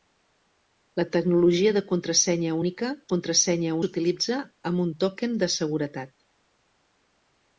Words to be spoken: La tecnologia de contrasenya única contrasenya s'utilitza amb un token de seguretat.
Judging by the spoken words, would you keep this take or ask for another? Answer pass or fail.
pass